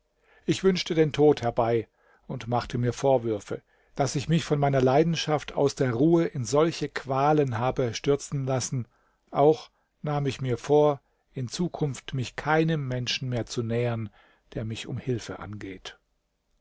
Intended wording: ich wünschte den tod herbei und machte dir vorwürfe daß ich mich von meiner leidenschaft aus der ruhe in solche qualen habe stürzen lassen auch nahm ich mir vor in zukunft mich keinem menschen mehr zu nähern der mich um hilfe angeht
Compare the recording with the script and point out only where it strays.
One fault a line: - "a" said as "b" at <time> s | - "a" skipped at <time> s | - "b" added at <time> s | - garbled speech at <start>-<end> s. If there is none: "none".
- "dir" said as "mir" at 2.8 s